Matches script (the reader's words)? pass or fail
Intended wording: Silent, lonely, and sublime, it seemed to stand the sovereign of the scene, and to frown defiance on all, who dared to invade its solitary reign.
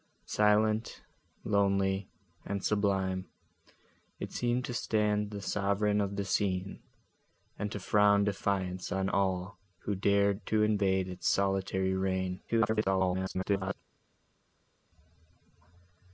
fail